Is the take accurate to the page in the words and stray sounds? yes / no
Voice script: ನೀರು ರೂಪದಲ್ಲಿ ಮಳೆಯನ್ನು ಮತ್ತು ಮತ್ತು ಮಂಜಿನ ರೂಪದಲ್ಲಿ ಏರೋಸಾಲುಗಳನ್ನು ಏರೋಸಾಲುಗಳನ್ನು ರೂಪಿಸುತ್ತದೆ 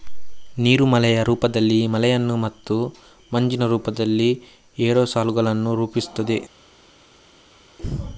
no